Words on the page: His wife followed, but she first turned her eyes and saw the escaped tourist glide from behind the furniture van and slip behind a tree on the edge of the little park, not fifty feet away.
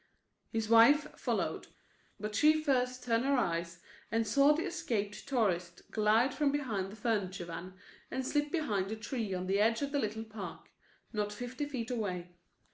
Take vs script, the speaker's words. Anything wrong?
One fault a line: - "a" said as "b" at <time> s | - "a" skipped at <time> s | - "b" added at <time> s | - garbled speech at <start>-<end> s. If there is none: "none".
none